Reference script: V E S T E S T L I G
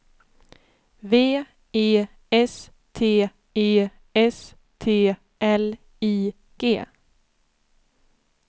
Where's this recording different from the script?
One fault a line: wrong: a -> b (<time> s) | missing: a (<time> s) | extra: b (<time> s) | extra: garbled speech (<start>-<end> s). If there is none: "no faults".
no faults